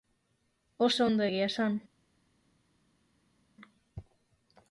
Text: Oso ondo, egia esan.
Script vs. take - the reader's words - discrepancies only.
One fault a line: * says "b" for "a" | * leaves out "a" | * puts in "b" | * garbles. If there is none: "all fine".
all fine